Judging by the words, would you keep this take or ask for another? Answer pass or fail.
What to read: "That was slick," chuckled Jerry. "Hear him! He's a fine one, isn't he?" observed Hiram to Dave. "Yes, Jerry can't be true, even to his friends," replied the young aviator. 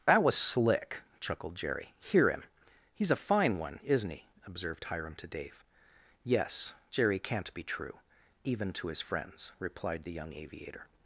pass